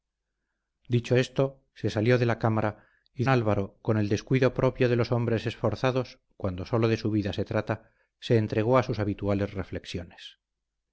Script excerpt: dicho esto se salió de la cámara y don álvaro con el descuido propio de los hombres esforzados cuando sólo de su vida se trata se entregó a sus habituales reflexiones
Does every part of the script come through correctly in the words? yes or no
no